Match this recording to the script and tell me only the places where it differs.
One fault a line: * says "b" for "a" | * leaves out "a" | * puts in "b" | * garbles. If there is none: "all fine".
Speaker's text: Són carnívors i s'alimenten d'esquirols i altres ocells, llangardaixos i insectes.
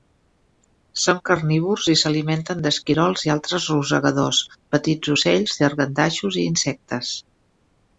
* puts in "rosegadors petits"